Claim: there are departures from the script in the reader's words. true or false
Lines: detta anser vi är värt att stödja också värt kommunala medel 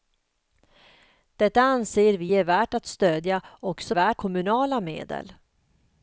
false